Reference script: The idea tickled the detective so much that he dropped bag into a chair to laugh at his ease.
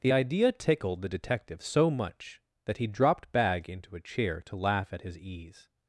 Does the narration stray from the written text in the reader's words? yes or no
no